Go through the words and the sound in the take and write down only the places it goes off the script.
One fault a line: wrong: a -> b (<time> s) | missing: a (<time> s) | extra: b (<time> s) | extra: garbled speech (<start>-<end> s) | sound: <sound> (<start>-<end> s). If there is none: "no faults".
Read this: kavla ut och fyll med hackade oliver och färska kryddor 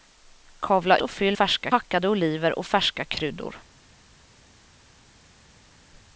missing: ut (1.0 s)
wrong: med -> färska (1.3 s)